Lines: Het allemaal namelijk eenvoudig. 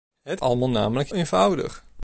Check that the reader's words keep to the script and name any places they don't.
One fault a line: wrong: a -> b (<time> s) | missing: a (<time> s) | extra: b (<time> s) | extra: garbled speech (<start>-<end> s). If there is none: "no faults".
no faults